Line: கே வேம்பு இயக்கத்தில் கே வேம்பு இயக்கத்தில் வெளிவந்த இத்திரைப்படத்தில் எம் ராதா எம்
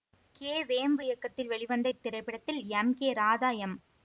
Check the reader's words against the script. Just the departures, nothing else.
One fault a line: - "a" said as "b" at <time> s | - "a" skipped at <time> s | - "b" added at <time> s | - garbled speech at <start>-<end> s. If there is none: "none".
- "கே வேம்பு இயக்கத்தில்" skipped at 1.5 s
- "கே" added at 3.0 s